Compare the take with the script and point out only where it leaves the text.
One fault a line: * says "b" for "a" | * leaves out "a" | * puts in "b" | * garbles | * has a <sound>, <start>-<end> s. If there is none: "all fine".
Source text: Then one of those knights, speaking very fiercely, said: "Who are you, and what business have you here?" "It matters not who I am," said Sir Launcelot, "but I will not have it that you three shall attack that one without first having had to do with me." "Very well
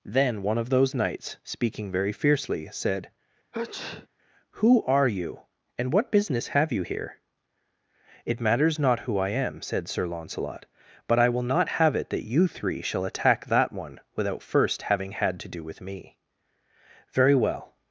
* has a sneeze, 3.5-4.1 s